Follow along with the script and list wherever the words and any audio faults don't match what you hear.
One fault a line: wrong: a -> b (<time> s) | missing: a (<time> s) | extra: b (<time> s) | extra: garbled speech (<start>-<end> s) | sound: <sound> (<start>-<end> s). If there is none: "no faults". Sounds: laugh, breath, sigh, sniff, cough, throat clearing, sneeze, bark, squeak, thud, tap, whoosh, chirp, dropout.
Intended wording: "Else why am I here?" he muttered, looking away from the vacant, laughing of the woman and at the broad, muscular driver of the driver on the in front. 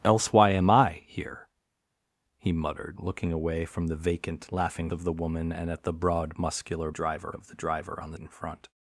no faults